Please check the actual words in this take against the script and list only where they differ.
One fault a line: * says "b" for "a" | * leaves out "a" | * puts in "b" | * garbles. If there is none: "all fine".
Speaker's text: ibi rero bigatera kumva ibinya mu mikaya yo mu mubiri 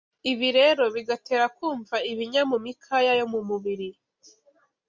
all fine